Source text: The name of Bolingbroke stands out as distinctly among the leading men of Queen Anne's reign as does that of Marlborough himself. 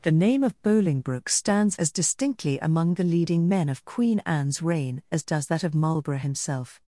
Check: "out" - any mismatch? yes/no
yes